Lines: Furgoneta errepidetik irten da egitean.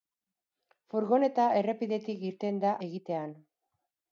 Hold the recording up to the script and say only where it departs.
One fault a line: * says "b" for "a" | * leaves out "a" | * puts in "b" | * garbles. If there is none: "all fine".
all fine